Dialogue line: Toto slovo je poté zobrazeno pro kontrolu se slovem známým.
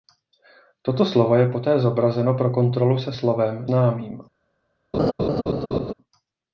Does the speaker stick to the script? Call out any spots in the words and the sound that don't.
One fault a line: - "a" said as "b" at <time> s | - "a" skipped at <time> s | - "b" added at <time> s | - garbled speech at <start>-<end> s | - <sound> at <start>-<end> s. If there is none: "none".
- laugh at 4.9-5.9 s